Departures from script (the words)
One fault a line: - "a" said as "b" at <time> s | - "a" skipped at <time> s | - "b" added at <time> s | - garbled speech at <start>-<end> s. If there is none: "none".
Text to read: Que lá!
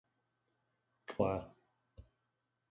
none